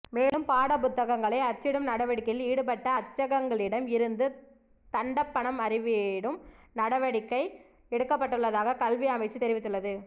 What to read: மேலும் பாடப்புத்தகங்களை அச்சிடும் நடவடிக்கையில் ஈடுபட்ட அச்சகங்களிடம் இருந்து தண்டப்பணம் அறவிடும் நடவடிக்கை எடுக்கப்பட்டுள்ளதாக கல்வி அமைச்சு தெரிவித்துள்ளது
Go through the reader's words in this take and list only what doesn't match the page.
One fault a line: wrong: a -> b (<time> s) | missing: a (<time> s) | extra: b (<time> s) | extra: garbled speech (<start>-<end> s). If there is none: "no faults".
no faults